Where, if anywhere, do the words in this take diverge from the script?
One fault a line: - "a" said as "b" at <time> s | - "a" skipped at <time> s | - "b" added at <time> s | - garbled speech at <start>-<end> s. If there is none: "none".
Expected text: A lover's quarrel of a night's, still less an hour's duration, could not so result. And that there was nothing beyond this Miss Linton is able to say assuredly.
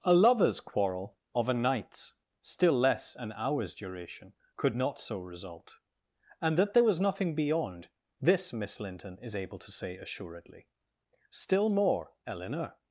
- "Still more Eleanor" added at 11.3 s